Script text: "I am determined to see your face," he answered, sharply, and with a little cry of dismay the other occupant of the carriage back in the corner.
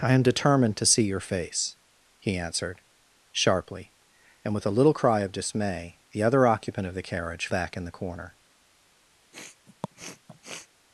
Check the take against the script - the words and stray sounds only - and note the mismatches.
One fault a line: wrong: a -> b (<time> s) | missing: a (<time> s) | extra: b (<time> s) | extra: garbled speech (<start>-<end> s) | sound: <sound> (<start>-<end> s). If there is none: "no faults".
sound: sniff (9.3-10.7 s)